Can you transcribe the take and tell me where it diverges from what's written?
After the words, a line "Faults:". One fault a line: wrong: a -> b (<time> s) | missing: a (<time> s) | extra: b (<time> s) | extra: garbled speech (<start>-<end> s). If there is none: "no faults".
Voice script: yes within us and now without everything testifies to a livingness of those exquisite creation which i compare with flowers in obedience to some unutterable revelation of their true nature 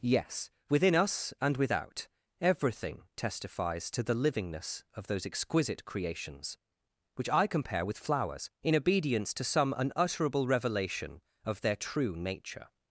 yes within us and without everything testifies to the livingness of those exquisite creations which i compare with flowers in obedience to some unutterable revelation of their true nature
Faults:
missing: now (1.6 s)
wrong: a -> the (4.0 s)
wrong: creation -> creations (5.8 s)